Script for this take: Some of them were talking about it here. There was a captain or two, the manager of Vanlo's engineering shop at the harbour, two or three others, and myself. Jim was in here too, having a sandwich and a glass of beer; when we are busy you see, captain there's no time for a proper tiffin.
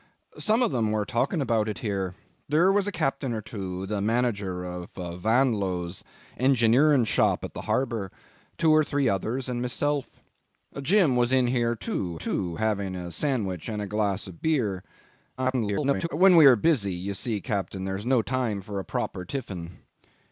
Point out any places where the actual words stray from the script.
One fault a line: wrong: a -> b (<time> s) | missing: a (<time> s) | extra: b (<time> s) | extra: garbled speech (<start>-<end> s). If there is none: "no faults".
extra: too (12.1 s)
extra: garbled speech (15.4-16.1 s)